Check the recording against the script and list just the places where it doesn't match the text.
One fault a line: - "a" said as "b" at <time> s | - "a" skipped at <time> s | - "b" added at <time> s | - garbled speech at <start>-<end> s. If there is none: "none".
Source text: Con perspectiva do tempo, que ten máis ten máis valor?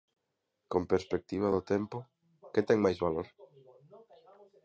- "ten máis" skipped at 3.0 s